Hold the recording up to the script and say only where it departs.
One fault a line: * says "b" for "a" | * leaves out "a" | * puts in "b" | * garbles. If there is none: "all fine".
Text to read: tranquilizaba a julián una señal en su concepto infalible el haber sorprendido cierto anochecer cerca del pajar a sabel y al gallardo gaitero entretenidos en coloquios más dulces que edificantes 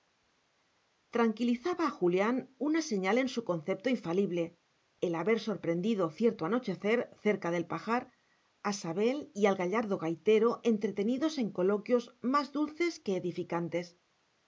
all fine